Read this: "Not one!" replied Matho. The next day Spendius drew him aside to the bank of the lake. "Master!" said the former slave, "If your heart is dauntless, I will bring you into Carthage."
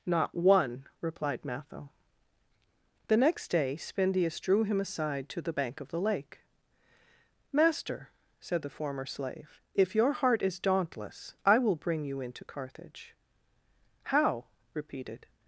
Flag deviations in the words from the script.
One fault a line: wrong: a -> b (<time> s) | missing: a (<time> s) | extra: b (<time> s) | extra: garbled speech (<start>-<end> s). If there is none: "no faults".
extra: How repeated (14.0 s)